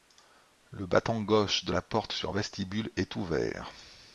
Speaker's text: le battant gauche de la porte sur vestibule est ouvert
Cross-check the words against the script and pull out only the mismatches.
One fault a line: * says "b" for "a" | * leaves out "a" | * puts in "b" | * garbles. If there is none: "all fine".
all fine